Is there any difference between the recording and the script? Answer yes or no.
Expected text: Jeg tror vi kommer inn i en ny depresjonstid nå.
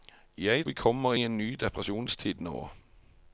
yes